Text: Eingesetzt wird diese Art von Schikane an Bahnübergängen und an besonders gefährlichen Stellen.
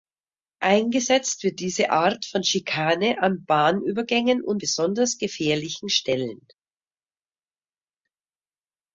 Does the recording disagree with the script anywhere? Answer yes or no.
yes